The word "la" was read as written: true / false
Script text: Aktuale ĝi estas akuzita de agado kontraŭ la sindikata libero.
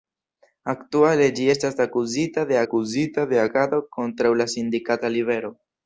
true